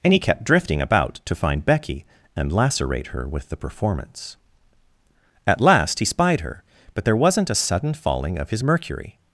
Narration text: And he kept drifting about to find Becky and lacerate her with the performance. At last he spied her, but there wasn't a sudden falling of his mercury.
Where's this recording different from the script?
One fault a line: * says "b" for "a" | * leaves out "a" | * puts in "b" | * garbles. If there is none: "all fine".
all fine